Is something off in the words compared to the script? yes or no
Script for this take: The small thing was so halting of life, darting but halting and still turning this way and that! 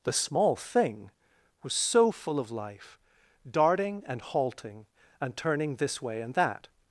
yes